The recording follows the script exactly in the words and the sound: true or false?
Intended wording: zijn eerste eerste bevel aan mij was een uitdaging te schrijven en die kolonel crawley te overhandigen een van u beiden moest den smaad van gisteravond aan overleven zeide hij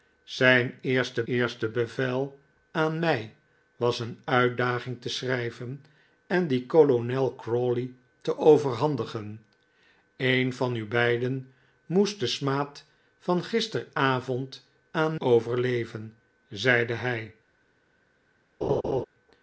false